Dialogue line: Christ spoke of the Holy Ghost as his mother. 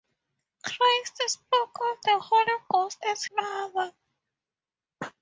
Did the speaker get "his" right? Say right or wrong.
wrong